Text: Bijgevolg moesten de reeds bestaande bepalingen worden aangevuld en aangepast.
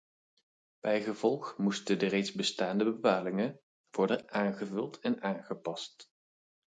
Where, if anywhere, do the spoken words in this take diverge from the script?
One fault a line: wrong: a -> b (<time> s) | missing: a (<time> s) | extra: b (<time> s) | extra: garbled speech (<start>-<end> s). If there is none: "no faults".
no faults